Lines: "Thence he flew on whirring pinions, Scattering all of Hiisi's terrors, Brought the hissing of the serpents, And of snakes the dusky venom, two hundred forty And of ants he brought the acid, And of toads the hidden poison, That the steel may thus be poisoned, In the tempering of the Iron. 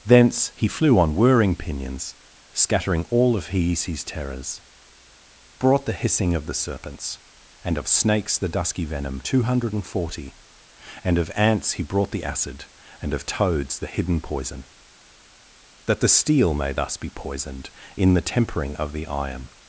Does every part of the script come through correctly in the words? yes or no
yes